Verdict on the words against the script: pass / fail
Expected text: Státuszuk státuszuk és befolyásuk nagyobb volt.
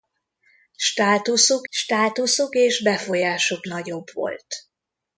pass